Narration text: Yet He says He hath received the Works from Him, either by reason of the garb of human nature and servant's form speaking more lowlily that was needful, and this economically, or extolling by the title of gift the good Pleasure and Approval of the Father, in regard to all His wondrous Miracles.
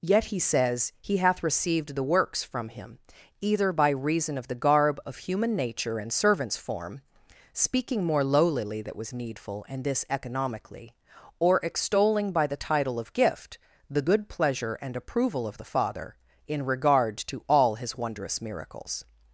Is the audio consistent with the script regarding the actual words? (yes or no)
yes